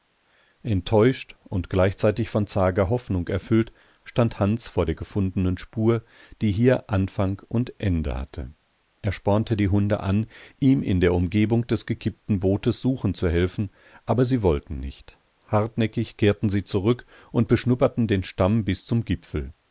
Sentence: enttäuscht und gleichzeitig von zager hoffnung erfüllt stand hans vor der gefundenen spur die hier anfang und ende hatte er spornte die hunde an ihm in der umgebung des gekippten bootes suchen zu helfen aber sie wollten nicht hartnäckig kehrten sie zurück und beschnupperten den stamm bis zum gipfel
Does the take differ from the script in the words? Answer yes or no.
no